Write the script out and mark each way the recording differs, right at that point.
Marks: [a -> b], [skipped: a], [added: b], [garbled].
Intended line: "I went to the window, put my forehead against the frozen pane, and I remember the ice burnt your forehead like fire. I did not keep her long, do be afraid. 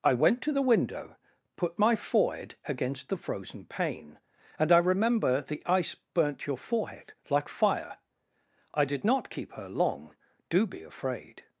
"I went to the window, put my forehead against the frozen pane, and I remember the ice burnt your forehead like fire. I did not keep her long, do be afraid.